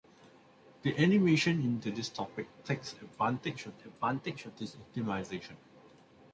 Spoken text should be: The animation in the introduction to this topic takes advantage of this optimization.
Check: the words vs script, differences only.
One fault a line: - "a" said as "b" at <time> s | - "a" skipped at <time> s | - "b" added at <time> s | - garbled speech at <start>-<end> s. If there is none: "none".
- "the introduction" skipped at 1.8 s
- "advantage of" added at 3.8 s